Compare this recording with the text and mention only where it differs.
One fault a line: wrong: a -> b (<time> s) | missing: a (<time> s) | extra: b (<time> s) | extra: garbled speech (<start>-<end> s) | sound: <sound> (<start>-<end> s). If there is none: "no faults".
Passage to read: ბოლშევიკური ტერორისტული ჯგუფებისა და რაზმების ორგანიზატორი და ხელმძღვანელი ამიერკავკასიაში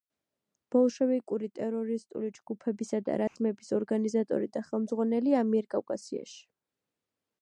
sound: dropout (3.3-3.4 s)